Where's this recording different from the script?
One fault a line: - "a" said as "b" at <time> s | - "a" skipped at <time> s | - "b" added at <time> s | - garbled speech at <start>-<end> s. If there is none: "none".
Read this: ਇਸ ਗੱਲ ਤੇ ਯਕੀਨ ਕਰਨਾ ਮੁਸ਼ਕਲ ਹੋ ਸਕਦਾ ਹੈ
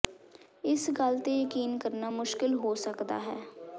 none